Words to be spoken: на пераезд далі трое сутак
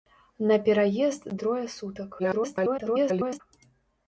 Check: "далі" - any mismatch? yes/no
yes